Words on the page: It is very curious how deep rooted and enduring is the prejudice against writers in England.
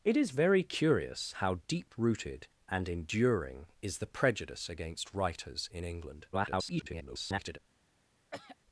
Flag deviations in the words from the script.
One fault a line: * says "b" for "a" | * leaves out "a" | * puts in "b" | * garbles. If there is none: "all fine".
* garbles